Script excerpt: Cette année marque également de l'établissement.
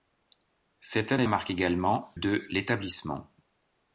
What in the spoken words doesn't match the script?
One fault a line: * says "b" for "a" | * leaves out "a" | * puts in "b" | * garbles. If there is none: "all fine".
all fine